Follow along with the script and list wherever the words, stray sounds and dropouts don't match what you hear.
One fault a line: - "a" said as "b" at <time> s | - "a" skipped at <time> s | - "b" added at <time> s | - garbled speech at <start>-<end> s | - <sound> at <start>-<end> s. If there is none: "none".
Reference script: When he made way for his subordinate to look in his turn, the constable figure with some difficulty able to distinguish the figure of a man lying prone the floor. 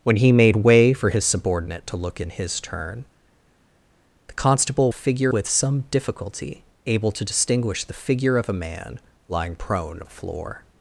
none